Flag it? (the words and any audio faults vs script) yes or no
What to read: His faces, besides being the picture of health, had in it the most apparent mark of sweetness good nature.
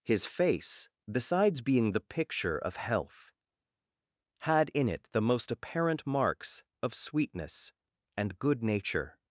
yes